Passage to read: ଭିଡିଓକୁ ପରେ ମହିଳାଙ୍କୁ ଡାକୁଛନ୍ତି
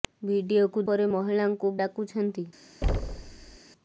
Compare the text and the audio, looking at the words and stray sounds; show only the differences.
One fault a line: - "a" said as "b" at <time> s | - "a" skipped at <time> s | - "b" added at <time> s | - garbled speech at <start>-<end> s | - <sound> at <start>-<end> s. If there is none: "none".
- thud at 2.8-3.6 s